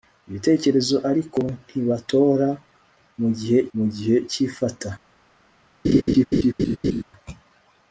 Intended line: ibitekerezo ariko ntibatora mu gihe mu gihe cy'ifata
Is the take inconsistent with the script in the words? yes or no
no